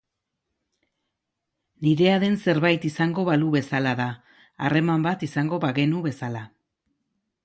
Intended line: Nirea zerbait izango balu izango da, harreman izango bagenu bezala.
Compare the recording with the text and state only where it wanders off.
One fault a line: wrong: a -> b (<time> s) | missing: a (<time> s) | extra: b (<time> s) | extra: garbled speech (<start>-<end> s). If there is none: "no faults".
extra: den (2.2 s)
wrong: izango -> bezala (3.6 s)
extra: bat (5.1 s)